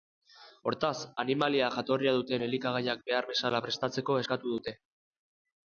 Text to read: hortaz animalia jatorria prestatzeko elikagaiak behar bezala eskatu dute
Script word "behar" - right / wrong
right